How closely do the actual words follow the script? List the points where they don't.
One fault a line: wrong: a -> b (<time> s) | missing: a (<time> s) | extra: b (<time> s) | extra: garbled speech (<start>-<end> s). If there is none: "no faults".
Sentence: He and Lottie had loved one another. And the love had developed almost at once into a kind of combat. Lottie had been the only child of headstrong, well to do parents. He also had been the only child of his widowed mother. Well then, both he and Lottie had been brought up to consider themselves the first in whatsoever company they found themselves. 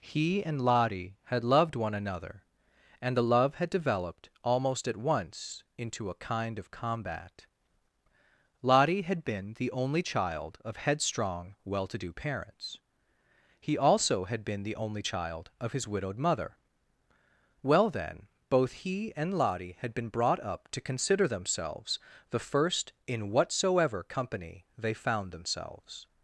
no faults